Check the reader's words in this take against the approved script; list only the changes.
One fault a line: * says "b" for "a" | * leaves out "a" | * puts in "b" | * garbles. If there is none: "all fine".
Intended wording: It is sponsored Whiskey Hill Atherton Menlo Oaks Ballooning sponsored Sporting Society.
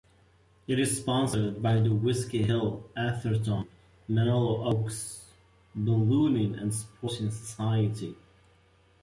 * puts in "by the"
* says "and" for "sponsored"